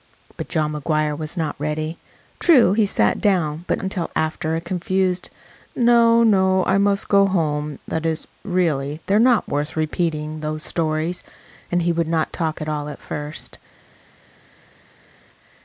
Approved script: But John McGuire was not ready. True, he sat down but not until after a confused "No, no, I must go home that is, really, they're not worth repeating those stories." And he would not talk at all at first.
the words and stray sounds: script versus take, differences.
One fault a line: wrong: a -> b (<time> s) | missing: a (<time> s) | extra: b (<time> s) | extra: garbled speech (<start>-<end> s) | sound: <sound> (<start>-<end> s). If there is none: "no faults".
missing: not (3.8 s)